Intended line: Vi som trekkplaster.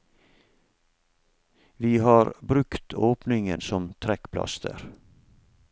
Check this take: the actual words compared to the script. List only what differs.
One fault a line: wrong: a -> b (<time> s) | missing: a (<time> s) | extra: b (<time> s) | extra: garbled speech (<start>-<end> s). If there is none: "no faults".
extra: har brukt åpningen (2.0 s)